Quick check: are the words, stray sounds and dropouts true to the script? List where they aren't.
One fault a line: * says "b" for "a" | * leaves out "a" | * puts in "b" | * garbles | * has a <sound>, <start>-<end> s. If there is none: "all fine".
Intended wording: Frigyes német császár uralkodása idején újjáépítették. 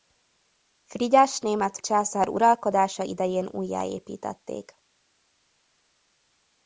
all fine